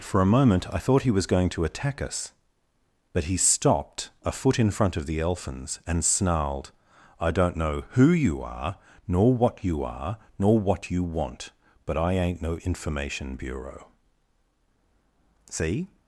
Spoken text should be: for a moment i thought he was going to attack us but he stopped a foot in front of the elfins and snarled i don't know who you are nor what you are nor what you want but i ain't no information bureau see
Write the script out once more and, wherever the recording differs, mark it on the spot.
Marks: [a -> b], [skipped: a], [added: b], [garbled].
for a moment i thought he was going to attack us but he stopped a foot in front of the elfins and snarled i don't know who you are nor what you are nor what you want but i ain't no information bureau see